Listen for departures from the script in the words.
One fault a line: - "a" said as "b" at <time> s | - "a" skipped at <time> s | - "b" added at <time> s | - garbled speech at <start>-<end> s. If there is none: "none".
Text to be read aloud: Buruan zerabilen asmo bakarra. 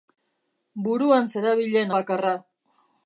- "asmo" skipped at 1.9 s